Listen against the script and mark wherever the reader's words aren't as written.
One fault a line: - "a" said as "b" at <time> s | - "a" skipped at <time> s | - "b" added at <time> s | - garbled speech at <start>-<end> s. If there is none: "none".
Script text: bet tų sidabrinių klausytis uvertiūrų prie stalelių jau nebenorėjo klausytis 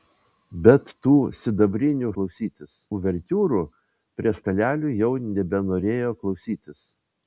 none